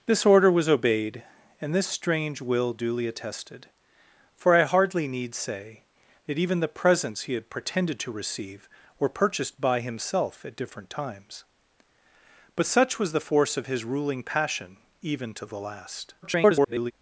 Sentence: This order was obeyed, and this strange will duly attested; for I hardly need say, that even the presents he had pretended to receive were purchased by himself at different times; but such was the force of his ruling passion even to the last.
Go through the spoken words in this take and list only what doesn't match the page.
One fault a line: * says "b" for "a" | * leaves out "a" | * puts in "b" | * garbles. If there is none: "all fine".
* garbles